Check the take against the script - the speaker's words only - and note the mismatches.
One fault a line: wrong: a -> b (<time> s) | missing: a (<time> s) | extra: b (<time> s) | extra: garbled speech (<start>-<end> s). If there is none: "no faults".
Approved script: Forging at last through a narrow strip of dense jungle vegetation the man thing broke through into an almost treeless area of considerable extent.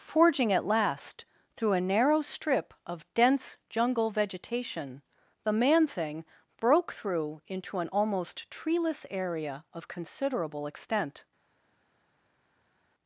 no faults